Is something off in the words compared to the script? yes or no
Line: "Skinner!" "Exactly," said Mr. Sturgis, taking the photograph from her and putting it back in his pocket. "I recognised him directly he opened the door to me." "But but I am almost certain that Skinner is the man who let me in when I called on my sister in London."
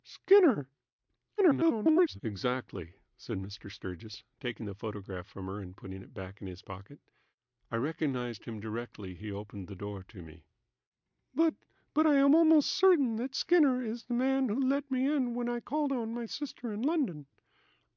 yes